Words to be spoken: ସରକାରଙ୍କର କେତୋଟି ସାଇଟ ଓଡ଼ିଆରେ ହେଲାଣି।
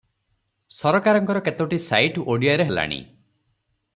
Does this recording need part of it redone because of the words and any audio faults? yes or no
no